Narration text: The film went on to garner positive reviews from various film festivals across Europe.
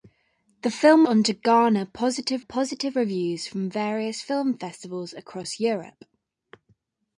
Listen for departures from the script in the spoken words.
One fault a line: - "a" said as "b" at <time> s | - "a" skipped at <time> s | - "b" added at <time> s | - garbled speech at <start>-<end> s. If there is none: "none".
- "went" skipped at 1.0 s
- "positive" added at 2.4 s